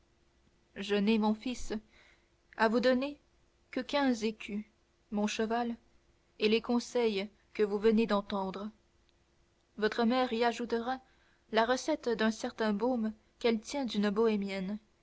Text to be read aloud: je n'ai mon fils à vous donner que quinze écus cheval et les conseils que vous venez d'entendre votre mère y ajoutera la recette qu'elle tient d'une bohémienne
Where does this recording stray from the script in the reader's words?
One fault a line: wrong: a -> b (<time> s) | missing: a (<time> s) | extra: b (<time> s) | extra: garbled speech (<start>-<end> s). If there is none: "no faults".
extra: mon (5.1 s)
extra: d'un certain baume (12.1 s)